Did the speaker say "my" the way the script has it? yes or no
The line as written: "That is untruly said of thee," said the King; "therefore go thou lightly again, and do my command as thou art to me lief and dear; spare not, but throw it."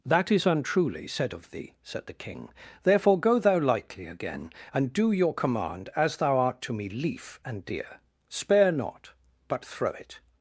no